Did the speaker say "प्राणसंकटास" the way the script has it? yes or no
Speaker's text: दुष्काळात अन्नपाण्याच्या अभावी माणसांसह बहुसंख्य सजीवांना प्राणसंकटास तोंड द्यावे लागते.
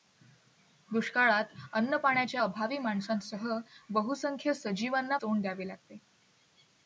no